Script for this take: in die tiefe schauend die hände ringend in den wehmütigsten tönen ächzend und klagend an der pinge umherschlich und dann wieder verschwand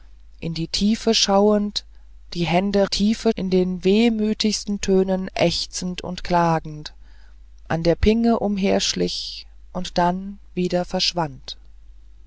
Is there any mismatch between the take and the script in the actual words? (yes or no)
yes